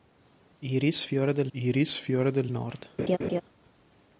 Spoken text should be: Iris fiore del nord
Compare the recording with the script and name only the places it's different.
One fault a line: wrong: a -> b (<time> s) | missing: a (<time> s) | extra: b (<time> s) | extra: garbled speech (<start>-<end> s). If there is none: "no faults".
extra: iris fiore del (1.5 s)